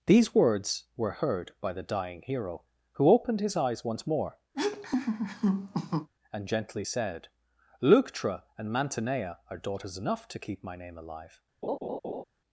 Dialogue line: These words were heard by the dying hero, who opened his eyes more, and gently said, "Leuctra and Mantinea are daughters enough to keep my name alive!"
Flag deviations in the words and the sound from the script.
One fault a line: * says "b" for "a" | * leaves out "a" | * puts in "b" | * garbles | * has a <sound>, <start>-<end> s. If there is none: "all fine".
* puts in "once"
* has a laugh, 4.5-6.1 s
* has a laugh, 11.6-12.2 s